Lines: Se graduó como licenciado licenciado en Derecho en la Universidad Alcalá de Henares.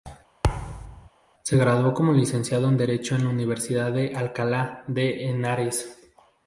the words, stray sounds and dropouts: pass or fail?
fail